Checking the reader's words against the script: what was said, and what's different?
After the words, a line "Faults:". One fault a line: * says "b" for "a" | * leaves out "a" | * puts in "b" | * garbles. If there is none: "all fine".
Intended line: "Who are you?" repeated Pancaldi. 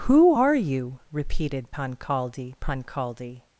"Who are you?" repeated Pancaldi Pancaldi.
Faults:
* puts in "Pancaldi"